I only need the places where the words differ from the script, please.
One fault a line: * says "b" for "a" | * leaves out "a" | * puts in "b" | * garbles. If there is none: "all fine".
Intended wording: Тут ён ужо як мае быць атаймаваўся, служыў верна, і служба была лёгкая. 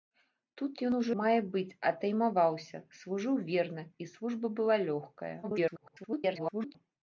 * leaves out "як"
* garbles